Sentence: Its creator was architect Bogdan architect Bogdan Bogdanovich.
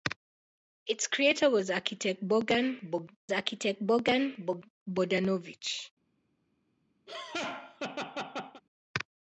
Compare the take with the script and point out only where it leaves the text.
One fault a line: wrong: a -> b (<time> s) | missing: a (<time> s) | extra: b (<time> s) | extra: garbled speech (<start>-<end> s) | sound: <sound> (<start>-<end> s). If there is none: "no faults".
sound: laugh (7.1-8.6 s)